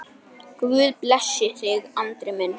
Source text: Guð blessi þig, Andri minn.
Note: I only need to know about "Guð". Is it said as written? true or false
true